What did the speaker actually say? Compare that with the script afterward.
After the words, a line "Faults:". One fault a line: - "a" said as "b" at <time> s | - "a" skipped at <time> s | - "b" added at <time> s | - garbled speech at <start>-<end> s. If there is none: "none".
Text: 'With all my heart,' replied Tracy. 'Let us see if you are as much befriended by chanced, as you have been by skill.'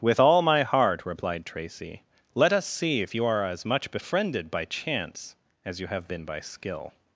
'With all my heart,' replied Tracy. 'Let us see if you are as much befriended by chance, as you have been by skill.'
Faults:
- "chanced" said as "chance" at 4.7 s